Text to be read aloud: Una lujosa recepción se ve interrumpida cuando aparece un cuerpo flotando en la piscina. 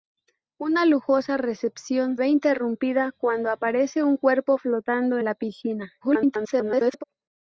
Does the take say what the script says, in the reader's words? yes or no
no